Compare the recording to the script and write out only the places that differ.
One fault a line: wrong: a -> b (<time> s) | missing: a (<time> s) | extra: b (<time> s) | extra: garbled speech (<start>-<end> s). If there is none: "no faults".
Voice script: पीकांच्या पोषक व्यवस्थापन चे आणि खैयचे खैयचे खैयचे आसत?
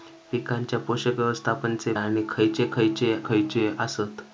no faults